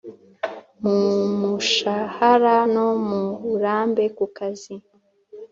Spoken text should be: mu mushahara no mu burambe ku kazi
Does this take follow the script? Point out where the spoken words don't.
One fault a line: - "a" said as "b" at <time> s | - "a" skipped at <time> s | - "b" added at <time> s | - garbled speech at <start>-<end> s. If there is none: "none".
none